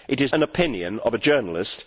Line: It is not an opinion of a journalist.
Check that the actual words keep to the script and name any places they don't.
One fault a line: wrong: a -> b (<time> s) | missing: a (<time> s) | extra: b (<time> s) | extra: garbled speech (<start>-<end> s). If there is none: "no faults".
missing: not (0.3 s)